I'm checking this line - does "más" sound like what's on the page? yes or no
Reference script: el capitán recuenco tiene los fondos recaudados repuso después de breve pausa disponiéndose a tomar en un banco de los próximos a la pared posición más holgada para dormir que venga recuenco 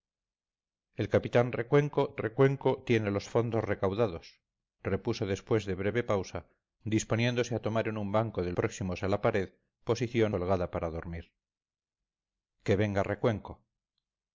no